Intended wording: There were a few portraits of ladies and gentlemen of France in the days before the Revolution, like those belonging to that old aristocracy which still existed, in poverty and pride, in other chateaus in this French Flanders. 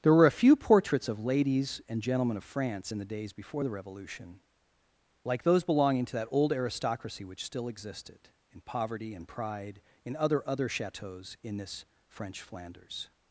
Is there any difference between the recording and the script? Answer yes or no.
yes